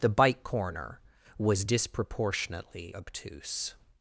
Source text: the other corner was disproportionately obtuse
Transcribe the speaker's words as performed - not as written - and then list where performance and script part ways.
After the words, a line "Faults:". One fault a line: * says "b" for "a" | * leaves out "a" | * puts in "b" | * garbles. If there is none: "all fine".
the bike corner was disproportionately obtuse
Faults:
* says "bike" for "other"